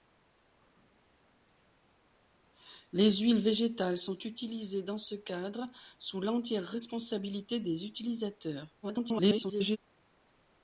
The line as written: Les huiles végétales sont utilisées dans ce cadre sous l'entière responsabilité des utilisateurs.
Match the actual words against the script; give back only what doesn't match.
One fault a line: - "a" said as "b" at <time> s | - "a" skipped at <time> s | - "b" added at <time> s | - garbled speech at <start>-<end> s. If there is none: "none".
- garbled speech at 8.8-9.8 s